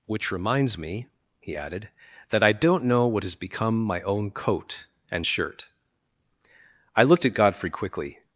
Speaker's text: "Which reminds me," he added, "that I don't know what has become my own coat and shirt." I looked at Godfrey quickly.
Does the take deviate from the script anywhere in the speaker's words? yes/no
no